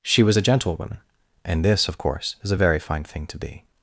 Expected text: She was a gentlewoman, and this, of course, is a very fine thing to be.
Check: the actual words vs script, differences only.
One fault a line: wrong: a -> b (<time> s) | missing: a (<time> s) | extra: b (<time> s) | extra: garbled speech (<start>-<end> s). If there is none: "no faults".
no faults